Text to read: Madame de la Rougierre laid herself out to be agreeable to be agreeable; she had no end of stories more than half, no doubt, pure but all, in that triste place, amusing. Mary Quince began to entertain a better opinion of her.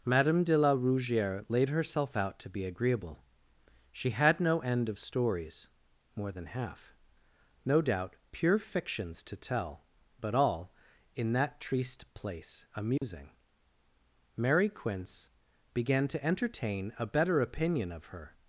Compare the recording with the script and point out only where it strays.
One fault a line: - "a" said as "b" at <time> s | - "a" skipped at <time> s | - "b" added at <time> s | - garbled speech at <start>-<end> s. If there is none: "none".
- "to be agreeable" skipped at 3.2 s
- "fictions to tell" added at 8.6 s